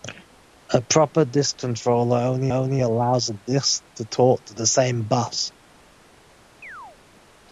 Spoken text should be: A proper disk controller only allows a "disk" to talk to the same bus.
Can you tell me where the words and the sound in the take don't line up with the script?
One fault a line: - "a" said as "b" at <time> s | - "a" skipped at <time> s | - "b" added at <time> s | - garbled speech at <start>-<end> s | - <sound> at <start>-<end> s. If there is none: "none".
- "only" added at 2.5 s
- chirp at 6.6-7.0 s